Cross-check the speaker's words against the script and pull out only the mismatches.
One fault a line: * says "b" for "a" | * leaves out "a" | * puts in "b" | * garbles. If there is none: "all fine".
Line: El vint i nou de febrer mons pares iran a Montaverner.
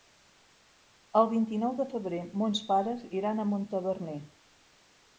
all fine